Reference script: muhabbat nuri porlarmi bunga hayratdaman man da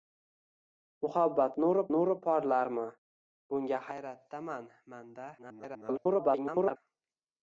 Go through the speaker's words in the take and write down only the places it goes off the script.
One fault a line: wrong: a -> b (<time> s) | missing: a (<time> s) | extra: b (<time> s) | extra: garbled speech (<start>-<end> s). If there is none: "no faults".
extra: nuri (1.9 s)
extra: garbled speech (5.4-6.8 s)